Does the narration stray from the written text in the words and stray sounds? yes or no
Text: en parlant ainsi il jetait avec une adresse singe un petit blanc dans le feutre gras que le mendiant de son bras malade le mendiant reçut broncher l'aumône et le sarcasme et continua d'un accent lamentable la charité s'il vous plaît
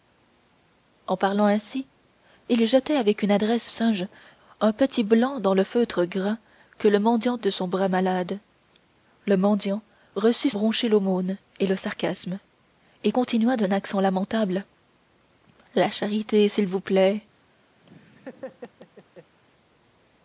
yes